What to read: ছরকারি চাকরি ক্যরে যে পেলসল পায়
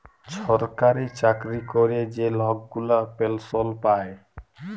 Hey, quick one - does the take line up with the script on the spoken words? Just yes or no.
no